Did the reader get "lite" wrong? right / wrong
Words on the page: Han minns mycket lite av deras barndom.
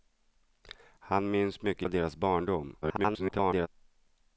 wrong